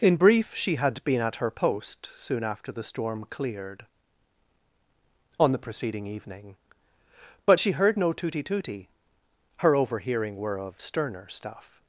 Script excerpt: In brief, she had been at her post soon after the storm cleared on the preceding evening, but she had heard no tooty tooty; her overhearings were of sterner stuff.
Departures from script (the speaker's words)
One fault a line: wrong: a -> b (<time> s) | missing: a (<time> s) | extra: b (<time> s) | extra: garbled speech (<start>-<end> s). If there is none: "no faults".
missing: had (7.7 s)
wrong: overhearings -> overhearing (9.8 s)